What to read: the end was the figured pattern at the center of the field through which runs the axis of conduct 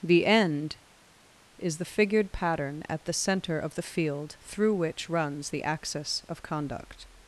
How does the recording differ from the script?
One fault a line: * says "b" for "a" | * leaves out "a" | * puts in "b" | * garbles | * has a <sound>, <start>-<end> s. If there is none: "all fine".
* says "is" for "was"